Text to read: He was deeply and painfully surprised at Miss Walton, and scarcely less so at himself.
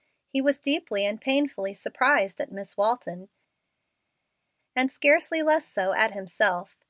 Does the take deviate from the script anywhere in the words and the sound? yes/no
no